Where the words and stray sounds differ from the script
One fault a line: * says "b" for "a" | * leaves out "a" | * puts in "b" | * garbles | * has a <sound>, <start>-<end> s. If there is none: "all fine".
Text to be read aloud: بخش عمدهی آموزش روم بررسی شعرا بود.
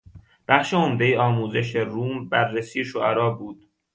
all fine